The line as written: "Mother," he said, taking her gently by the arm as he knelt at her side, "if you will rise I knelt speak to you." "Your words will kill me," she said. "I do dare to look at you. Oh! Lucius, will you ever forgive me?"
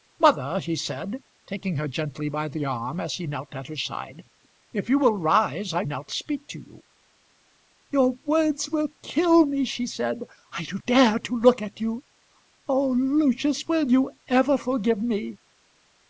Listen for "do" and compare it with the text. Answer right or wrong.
right